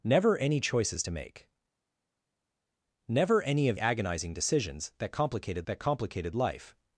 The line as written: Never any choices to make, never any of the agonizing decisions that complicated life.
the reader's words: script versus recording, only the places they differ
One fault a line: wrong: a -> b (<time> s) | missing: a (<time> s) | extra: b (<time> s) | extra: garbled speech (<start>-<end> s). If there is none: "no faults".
missing: the (3.8 s)
extra: that complicated (5.6 s)